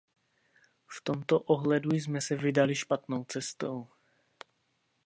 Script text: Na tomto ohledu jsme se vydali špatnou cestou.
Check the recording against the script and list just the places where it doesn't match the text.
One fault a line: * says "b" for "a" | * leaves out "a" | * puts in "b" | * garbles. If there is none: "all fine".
* says "V" for "Na"